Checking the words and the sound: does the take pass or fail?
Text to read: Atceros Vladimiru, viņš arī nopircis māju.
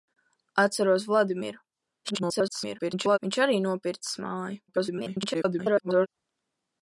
fail